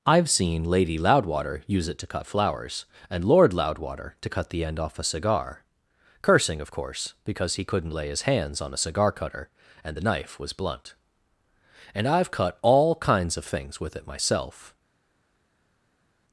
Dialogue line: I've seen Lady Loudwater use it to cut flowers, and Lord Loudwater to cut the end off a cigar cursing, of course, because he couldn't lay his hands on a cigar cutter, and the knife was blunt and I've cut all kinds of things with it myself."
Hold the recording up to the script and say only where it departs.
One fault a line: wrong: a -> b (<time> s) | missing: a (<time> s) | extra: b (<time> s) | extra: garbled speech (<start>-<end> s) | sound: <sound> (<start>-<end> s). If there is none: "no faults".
no faults